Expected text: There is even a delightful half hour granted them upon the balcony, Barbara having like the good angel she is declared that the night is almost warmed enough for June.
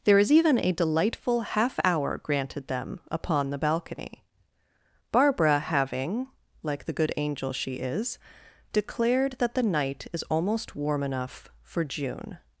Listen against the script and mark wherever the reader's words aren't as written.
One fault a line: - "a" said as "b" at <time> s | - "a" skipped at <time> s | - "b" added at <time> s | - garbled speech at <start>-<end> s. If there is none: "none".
- "warmed" said as "warm" at 10.8 s